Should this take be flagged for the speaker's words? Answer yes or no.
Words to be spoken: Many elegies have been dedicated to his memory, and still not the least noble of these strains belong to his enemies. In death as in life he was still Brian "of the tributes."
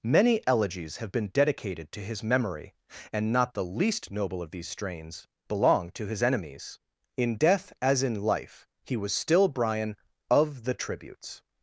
yes